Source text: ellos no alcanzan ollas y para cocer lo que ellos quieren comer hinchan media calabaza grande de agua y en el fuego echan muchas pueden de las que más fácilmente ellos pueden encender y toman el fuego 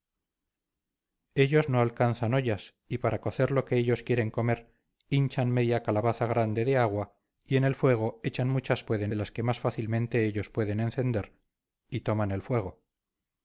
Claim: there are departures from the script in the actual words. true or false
false